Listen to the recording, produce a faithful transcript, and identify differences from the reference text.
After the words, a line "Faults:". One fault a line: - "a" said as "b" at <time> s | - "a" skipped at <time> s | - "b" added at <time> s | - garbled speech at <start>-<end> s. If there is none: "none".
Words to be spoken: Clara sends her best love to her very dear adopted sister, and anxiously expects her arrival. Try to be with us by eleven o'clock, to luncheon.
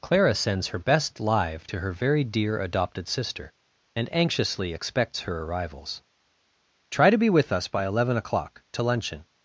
Clara sends her best live to her very dear adopted sister, and anxiously expects her arrivals. Try to be with us by eleven o'clock, to luncheon.
Faults:
- "love" said as "live" at 1.2 s
- "arrival" said as "arrivals" at 5.4 s